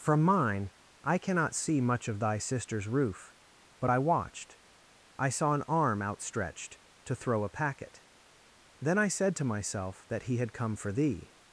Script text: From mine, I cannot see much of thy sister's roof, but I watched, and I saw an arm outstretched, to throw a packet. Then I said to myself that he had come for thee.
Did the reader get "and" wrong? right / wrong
wrong